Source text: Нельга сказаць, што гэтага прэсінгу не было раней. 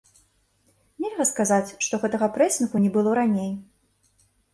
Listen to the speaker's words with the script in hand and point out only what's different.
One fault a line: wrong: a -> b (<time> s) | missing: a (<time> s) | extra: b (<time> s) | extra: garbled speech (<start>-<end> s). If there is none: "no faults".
no faults